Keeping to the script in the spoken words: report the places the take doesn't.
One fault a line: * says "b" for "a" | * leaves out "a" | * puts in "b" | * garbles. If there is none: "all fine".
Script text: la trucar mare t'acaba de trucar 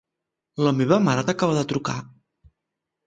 * says "meva" for "trucar"